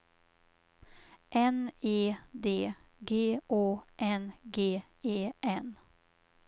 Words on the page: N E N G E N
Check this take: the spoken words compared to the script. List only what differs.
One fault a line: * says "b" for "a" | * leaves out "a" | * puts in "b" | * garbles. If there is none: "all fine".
* puts in "D G Å"